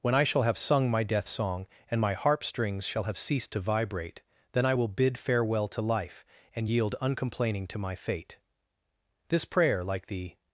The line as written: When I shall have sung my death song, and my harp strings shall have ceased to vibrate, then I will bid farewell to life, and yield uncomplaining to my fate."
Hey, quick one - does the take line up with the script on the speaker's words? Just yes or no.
no